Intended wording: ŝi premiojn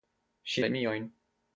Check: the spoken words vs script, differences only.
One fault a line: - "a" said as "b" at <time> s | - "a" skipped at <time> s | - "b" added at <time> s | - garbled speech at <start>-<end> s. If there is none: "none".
none